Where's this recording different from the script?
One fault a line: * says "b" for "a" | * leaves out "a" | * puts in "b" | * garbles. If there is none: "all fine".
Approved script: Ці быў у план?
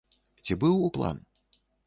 all fine